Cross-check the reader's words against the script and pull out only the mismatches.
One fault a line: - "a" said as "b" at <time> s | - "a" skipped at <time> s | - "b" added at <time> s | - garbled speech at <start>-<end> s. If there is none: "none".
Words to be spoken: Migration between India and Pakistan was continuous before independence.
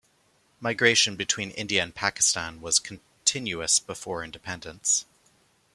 none